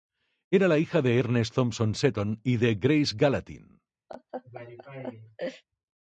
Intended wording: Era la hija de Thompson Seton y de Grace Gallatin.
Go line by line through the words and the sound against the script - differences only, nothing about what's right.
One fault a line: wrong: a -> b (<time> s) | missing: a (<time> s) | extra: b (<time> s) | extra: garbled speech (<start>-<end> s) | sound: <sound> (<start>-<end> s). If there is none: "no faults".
extra: Ernest (1.2 s)
sound: laugh (4.1-5.6 s)